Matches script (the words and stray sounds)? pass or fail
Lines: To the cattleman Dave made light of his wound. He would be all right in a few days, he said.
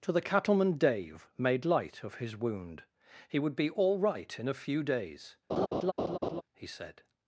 fail